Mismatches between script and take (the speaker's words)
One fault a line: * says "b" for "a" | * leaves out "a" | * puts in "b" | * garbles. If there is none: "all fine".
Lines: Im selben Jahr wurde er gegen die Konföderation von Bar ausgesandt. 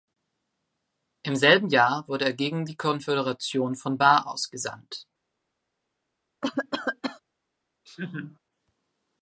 all fine